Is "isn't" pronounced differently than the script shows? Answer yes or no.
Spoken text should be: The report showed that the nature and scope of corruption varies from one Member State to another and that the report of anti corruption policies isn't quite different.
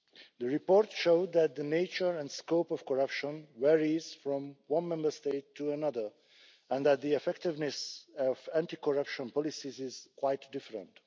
yes